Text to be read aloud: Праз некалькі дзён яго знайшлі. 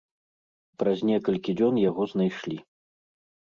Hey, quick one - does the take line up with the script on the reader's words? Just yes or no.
yes